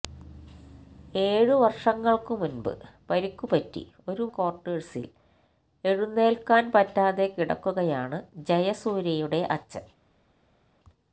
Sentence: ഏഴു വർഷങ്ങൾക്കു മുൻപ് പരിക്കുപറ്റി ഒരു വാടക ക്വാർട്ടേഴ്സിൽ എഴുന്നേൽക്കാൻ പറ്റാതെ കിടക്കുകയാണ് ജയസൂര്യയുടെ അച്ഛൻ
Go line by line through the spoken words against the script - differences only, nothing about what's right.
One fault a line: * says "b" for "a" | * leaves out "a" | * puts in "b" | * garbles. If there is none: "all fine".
* leaves out "വാടക"